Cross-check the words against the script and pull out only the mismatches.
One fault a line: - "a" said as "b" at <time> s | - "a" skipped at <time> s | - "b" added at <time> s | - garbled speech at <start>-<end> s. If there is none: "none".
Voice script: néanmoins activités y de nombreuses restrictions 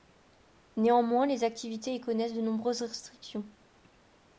- "les" added at 1.3 s
- "connaissent" added at 2.0 s